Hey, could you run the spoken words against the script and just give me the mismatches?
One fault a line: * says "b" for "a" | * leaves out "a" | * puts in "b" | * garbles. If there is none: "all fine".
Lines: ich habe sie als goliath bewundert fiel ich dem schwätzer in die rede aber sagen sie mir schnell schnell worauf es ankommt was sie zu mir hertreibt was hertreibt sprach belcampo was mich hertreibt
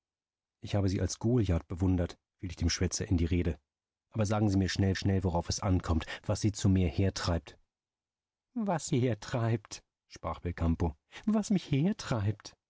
all fine